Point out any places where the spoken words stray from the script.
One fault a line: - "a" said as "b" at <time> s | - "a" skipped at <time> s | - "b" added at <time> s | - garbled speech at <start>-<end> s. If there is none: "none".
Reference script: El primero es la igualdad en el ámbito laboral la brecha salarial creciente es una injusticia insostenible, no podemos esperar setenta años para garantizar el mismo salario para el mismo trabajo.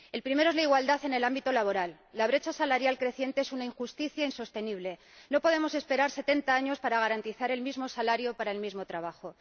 none